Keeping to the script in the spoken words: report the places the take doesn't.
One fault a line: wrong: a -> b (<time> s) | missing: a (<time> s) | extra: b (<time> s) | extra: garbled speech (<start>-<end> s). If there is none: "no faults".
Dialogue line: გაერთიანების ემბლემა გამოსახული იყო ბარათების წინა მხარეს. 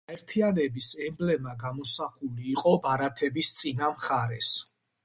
no faults